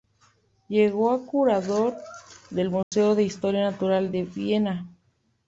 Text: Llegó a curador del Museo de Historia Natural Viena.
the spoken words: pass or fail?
fail